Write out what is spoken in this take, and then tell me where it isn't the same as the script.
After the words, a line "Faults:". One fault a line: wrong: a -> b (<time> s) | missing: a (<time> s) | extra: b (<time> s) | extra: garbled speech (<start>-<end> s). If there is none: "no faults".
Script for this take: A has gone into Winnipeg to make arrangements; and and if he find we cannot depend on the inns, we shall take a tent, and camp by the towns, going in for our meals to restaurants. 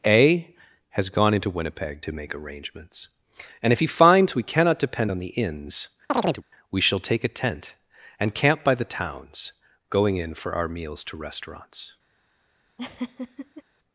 A has gone into Winnipeg to make arrangements; and if he finds we cannot depend on the inns, we shall take a tent, and camp by the towns, going in for our meals to restaurants.
Faults:
missing: and (3.7 s)
wrong: find -> finds (3.9 s)